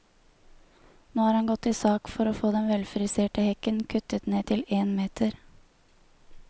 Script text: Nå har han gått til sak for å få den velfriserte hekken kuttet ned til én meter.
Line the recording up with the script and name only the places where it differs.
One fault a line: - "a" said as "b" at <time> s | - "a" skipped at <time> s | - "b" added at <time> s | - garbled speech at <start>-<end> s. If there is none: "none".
none